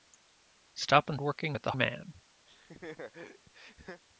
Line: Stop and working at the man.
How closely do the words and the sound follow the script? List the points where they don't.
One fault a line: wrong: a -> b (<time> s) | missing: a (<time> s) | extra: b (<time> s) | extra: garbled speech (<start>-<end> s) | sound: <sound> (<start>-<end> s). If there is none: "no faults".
sound: laugh (2.5-4.0 s)